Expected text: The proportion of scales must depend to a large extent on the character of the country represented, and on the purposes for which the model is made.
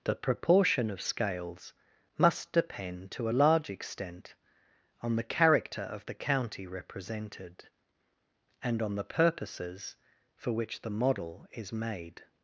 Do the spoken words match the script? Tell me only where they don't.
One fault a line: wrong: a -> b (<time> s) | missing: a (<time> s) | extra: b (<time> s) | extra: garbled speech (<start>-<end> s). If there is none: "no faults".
wrong: country -> county (6.1 s)